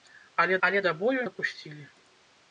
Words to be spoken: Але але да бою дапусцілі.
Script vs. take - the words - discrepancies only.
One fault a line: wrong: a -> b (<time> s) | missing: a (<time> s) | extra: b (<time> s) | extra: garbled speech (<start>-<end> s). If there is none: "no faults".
no faults